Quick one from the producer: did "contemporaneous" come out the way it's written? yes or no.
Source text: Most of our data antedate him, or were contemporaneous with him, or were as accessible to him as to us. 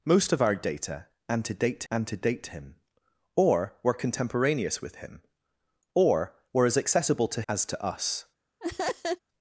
yes